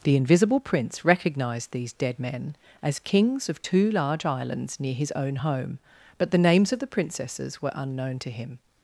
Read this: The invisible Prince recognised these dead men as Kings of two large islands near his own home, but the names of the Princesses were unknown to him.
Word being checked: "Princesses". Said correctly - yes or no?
yes